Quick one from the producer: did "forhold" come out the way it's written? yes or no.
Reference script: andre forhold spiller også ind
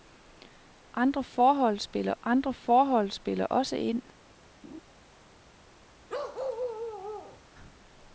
yes